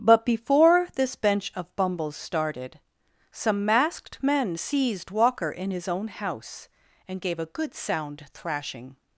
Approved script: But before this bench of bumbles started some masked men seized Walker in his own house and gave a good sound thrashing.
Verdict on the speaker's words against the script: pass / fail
pass